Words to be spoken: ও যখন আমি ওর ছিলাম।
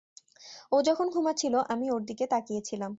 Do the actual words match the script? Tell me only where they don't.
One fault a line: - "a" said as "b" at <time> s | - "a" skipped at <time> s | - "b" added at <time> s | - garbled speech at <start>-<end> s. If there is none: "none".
- "ঘুমাচ্ছিল" added at 1.1 s
- "দিকে তাকিয়ে" added at 2.0 s